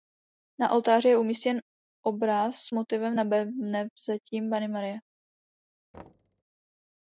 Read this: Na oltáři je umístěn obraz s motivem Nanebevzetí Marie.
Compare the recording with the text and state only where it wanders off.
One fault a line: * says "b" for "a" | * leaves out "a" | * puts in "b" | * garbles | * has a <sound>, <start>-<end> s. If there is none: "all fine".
* puts in "Panny"
* has a thud, 5.9-6.4 s